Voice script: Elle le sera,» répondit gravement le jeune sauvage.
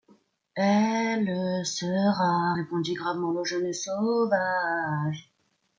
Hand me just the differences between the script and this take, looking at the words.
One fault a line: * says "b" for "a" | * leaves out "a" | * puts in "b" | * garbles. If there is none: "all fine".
all fine